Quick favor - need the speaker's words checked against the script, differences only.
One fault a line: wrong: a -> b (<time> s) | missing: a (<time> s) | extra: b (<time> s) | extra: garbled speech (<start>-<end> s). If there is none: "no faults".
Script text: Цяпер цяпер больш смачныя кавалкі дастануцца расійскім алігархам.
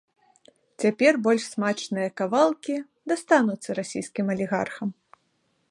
missing: цяпер (1.1 s)